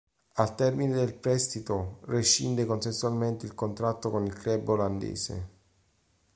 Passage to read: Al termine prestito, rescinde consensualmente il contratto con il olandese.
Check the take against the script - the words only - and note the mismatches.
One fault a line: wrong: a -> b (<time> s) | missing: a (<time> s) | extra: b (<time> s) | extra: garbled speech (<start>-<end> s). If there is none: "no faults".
extra: del (0.9 s)
extra: club (4.3 s)